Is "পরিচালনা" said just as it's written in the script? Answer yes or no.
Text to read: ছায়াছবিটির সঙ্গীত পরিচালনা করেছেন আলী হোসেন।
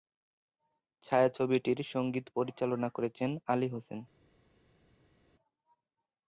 yes